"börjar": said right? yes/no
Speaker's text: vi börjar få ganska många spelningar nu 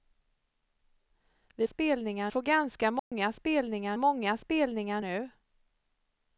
no